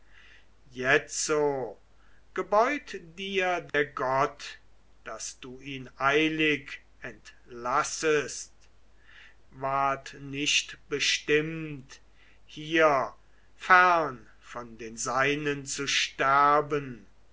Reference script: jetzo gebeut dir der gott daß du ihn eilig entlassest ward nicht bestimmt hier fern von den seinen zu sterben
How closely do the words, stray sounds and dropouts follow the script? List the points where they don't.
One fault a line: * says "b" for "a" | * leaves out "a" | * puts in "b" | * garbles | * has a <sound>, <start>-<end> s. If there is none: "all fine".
* has a dropout, 3.7-3.7 s